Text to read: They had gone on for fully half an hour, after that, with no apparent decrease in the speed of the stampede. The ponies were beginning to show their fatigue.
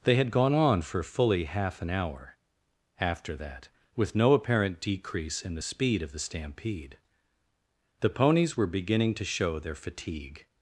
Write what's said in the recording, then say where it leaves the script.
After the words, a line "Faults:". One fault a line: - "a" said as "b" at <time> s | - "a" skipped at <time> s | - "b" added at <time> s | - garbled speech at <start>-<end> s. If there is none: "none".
They had gone on for fully half an hour, after that, with no apparent decrease in the speed of the stampede. The ponies were beginning to show their fatigue.
Faults:
none